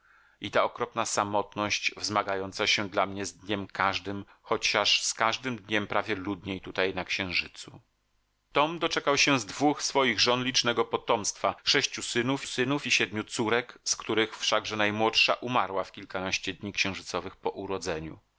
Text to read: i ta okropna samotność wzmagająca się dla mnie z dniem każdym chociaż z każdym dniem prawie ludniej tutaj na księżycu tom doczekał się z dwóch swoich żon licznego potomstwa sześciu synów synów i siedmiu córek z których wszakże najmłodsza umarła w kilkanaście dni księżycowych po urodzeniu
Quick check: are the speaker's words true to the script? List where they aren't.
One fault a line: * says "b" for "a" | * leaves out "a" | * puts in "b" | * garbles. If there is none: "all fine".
all fine